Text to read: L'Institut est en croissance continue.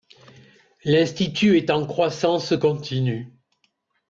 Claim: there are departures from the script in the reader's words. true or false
false